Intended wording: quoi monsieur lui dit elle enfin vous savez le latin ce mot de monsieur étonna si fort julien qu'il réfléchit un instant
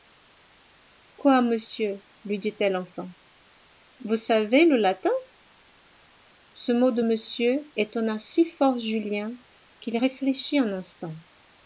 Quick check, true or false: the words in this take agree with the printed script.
true